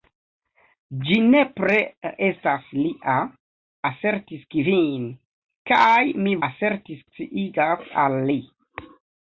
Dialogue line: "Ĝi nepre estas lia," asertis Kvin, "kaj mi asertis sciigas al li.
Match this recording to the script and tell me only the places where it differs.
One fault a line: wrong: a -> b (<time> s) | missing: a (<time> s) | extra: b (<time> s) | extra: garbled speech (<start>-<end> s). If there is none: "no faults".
no faults